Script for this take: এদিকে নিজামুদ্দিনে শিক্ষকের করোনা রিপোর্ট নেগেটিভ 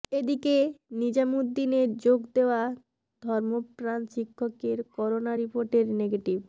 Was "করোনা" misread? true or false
false